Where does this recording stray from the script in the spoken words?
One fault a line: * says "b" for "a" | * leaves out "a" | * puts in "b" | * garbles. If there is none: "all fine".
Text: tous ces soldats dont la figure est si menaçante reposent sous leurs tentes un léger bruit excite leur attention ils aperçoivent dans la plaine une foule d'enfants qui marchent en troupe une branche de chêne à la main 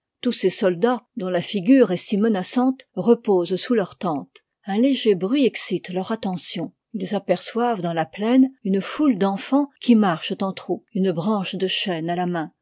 all fine